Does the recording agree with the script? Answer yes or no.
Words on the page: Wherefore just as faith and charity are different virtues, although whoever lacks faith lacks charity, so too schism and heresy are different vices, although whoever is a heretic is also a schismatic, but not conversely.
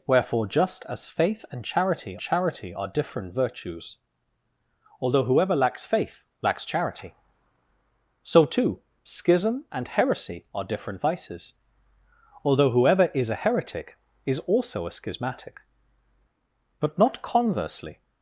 no